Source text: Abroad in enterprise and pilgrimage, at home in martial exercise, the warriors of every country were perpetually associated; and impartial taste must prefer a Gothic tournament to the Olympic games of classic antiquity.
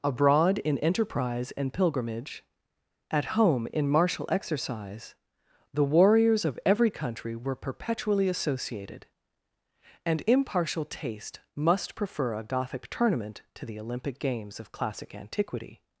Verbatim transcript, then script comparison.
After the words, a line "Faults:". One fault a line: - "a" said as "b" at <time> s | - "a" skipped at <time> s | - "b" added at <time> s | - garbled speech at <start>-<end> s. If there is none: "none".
Abroad in enterprise and pilgrimage, at home in martial exercise, the warriors of every country were perpetually associated; and impartial taste must prefer a Gothic tournament to the Olympic games of classic antiquity.
Faults:
none